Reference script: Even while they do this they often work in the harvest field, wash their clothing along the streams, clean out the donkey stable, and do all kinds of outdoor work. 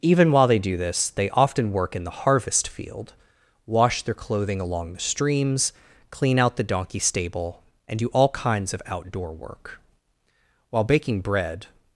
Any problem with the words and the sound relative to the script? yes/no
yes